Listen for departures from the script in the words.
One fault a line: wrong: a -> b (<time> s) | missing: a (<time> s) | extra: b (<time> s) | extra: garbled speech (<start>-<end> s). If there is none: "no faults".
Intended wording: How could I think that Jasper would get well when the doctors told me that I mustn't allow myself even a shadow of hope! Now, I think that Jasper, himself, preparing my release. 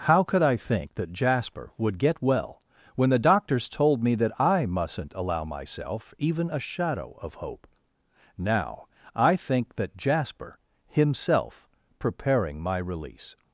no faults